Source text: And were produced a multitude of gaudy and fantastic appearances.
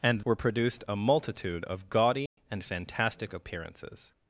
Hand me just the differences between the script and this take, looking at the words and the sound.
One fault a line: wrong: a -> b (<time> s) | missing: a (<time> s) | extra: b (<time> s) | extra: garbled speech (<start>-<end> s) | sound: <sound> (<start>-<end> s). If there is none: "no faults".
sound: dropout (2.3-2.4 s)